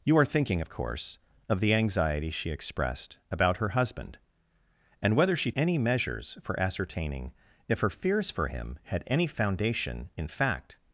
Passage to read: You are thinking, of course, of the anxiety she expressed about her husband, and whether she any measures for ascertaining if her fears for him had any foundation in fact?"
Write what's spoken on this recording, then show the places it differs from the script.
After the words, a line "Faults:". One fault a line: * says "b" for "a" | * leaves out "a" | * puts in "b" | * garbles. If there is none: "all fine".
You are thinking, of course, of the anxiety she expressed about her husband, and whether she any measures for ascertaining if her fears for him had any foundation in fact?"
Faults:
all fine